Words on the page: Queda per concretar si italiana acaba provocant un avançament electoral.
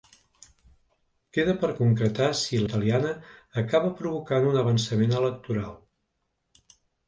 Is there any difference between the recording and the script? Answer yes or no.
no